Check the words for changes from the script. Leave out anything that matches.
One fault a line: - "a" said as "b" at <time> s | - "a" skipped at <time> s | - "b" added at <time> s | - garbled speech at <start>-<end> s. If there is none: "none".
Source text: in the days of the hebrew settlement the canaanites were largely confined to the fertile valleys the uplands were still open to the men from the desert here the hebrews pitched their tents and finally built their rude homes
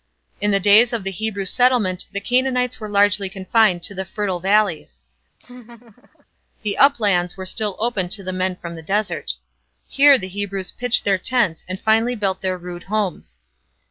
none